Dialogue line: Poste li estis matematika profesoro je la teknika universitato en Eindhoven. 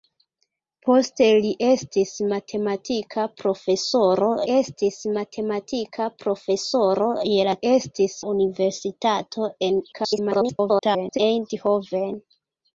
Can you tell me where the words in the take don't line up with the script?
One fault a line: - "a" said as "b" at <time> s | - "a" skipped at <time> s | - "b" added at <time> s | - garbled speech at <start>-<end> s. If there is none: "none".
- "estis matematika profesoro" added at 4.5 s
- "teknika" said as "estis" at 7.7 s
- garbled speech at 9.9-11.2 s